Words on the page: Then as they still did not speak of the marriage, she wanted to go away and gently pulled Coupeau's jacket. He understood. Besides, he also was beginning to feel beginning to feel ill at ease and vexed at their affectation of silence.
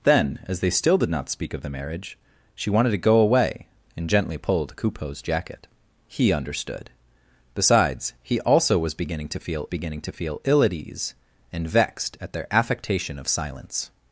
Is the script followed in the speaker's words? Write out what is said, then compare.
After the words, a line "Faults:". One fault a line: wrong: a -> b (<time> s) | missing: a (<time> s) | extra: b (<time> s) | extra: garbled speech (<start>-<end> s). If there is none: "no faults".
Then as they still did not speak of the marriage, she wanted to go away and gently pulled Coupeau's jacket. He understood. Besides, he also was beginning to feel beginning to feel ill at ease and vexed at their affectation of silence.
Faults:
no faults